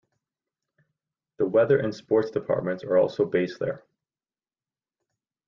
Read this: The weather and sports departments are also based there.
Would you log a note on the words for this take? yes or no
no